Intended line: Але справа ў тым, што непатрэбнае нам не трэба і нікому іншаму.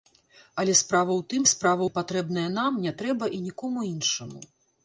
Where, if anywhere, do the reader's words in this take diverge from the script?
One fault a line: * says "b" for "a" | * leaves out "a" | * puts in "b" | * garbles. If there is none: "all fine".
* says "справа" for "што"